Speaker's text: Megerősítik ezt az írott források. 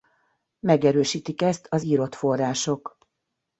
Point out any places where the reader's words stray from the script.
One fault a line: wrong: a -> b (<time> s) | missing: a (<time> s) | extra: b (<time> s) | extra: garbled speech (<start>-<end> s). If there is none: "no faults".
no faults